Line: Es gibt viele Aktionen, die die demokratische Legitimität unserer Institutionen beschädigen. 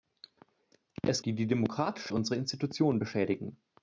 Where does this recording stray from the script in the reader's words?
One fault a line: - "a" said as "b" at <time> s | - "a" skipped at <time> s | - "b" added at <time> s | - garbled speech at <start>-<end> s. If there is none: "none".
- "gibt viele Aktionen" skipped at 1.2 s
- "Legitimität" skipped at 2.1 s